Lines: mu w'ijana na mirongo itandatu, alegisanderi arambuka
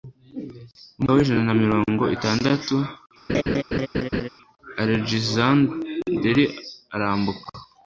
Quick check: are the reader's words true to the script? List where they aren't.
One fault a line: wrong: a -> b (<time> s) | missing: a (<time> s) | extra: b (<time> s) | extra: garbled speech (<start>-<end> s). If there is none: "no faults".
no faults